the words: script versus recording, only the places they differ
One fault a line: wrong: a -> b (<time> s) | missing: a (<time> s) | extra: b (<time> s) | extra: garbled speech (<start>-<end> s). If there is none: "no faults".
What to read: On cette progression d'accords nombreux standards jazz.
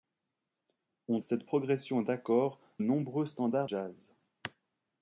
no faults